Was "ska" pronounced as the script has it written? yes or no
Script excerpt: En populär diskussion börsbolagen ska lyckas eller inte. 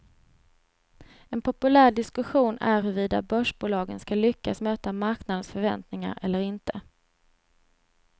yes